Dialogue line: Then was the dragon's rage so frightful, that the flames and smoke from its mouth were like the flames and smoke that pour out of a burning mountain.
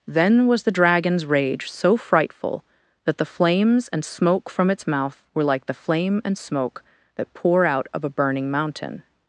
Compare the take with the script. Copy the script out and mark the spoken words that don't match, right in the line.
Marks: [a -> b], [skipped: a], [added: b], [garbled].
Then was the dragon's rage so frightful, that the flames and smoke from its mouth were like the [flames -> flame] and smoke that pour out of a burning mountain.